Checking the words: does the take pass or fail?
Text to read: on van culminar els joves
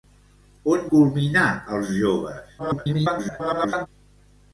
fail